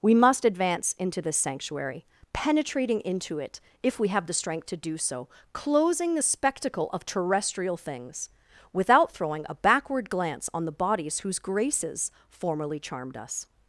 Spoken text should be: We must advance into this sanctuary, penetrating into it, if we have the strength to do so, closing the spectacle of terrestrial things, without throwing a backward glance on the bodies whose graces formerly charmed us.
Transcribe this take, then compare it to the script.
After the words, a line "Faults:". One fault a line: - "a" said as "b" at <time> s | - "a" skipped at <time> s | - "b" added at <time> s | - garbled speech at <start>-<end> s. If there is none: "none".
We must advance into this sanctuary, penetrating into it, if we have the strength to do so, closing the spectacle of terrestrial things, without throwing a backward glance on the bodies whose graces formerly charmed us.
Faults:
none